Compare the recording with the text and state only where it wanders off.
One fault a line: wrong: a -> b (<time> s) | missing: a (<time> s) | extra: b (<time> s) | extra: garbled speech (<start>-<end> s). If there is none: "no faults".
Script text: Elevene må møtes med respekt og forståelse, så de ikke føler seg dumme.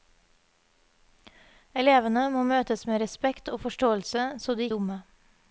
missing: ikke føler seg (4.7 s)